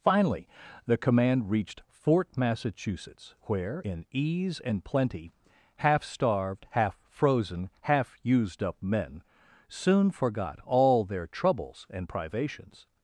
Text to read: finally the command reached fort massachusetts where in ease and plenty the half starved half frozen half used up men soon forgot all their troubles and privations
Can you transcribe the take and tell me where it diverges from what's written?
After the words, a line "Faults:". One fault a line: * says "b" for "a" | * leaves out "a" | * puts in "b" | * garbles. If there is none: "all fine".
finally the command reached fort massachusetts where in ease and plenty half starved half frozen half used up men soon forgot all their troubles and privations
Faults:
* leaves out "the"